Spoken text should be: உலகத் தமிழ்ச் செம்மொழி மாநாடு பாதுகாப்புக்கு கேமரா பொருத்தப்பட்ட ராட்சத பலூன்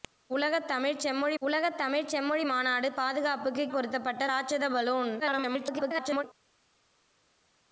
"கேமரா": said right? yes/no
no